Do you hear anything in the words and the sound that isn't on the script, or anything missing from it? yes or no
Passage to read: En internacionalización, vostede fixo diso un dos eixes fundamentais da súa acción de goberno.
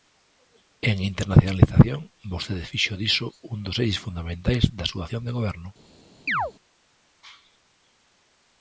yes